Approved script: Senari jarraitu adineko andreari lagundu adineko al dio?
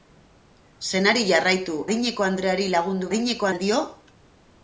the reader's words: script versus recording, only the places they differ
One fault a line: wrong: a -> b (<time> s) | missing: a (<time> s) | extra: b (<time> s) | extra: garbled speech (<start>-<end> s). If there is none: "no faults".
no faults